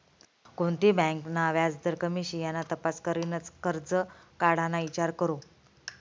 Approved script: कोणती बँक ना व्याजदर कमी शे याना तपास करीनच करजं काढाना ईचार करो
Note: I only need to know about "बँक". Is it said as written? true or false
true